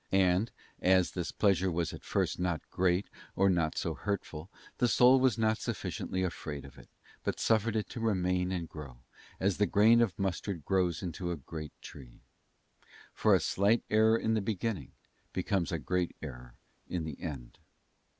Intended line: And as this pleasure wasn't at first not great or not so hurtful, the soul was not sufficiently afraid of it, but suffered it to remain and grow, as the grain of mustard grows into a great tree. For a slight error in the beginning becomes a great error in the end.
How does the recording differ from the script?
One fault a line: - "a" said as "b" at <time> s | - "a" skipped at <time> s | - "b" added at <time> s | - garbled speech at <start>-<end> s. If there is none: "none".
- "wasn't" said as "was" at 1.7 s